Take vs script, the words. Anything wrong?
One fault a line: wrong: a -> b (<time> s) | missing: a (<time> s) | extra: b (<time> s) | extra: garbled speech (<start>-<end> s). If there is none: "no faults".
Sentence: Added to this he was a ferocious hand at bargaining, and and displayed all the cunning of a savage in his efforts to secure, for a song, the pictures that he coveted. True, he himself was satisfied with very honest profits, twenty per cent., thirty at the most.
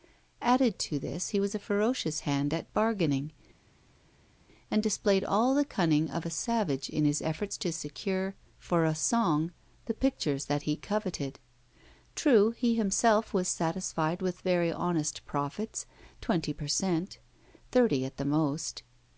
missing: and (4.8 s)